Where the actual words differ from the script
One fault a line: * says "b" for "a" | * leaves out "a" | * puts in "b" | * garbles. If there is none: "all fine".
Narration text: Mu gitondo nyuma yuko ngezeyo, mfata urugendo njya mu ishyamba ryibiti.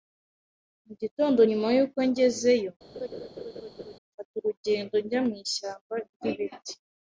all fine